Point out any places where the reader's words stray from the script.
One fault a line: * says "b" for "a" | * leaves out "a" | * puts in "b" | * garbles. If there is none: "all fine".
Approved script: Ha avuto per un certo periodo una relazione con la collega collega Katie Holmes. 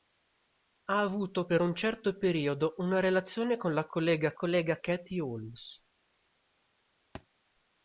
all fine